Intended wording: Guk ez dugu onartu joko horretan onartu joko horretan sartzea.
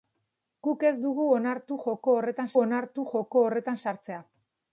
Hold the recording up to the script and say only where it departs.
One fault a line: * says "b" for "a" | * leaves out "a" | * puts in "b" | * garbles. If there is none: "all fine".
all fine